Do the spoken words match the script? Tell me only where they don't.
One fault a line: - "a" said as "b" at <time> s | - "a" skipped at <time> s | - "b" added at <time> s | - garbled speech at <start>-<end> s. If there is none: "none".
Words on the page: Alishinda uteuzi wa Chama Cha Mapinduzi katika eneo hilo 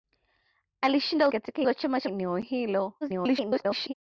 - "uteuzi" said as "katika" at 1.3 s
- "Mapinduzi katika" skipped at 2.1 s
- garbled speech at 3.0-3.9 s